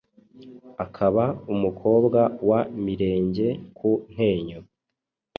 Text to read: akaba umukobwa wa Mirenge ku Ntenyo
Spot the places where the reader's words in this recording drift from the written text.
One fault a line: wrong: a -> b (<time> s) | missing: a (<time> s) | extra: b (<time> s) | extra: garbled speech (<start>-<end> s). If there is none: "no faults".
no faults